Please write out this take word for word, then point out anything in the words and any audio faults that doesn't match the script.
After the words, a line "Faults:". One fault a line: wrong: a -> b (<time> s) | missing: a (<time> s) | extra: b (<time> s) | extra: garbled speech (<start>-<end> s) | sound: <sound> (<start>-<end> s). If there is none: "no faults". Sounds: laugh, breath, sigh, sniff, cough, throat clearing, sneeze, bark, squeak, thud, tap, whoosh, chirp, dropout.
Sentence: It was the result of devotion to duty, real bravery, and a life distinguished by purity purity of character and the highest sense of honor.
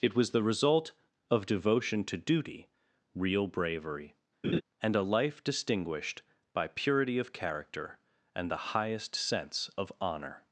It was the result of devotion to duty, real bravery, and a life distinguished by purity of character and the highest sense of honor.
Faults:
sound: laugh (4.4-4.6 s)
missing: purity (7.2 s)